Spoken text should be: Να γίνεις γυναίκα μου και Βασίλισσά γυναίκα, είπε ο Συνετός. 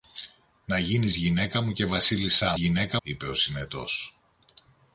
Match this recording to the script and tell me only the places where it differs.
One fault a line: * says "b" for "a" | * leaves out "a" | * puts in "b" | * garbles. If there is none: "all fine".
all fine